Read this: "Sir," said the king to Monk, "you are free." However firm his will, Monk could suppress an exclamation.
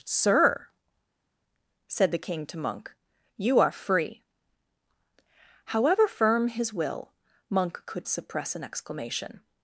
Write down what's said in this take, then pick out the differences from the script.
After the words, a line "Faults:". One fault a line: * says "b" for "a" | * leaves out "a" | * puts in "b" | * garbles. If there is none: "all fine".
"Sir," said the king to Monk, "you are free." However firm his will, Monk could suppress an exclamation.
Faults:
all fine